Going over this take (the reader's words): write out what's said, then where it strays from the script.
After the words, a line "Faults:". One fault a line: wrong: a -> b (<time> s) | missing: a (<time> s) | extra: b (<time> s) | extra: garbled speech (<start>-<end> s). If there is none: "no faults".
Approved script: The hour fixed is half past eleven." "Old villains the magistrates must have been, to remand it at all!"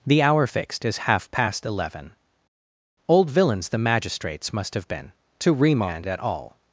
The hour fixed is half past eleven." "Old villains the magistrates must have been, to remand at all!"
Faults:
missing: it (6.1 s)